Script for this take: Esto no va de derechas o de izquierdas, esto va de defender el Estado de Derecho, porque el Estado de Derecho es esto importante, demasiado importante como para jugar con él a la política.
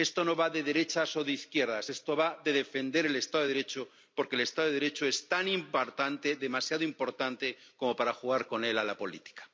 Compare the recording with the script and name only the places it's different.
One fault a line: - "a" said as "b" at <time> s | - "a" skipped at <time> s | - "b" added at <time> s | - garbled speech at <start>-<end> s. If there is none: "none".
- "esto" said as "tan" at 5.3 s